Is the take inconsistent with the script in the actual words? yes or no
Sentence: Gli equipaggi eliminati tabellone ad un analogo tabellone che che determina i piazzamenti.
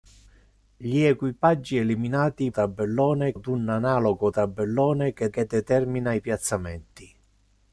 no